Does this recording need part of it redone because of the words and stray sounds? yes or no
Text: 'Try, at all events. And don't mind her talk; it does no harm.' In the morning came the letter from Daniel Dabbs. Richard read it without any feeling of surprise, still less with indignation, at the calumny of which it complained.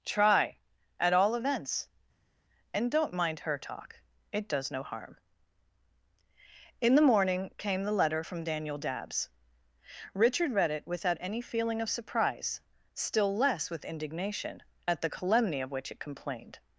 no